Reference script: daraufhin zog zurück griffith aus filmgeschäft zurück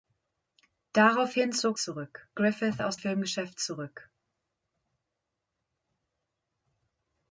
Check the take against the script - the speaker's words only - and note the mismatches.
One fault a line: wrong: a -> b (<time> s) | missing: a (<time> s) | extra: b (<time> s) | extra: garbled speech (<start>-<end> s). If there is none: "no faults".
no faults